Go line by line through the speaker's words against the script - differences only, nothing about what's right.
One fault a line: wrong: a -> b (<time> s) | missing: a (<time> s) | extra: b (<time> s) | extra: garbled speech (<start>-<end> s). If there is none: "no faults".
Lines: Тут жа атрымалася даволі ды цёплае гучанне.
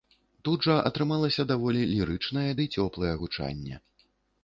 extra: лірычнае (1.9 s)